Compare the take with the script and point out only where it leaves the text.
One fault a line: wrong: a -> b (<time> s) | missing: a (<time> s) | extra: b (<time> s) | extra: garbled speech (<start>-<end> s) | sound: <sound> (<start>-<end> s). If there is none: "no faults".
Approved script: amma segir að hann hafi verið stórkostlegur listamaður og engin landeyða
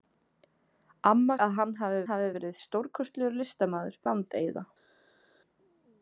missing: segir (1.4 s)
extra: hafi (2.1 s)
missing: og engin (4.0 s)